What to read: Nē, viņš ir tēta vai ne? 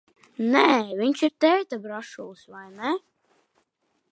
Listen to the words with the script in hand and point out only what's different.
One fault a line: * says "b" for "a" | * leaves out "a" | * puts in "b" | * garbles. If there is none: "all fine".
* puts in "brašulis"